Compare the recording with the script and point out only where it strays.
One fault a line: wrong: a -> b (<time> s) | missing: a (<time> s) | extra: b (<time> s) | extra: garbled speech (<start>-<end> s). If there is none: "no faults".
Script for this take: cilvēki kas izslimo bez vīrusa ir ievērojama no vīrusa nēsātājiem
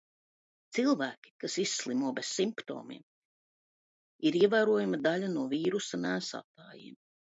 wrong: vīrusa -> simptomiem (2.4 s)
extra: daļa (5.1 s)